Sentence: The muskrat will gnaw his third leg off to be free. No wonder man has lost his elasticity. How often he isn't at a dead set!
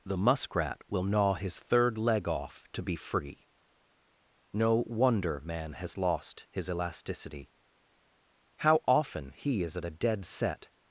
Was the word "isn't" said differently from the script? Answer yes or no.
yes